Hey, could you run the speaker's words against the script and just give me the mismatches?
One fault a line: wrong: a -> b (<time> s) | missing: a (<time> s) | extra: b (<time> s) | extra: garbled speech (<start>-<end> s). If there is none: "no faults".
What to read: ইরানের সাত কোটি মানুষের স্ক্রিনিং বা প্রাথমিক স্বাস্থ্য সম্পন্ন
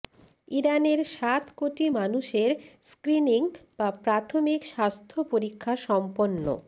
extra: পরীক্ষা (5.3 s)